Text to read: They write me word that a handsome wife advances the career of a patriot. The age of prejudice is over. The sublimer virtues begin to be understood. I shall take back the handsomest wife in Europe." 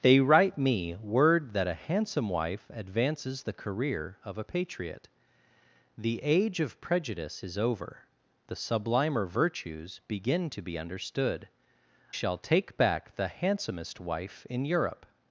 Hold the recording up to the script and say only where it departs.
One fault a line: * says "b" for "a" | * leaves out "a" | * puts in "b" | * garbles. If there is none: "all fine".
* leaves out "I"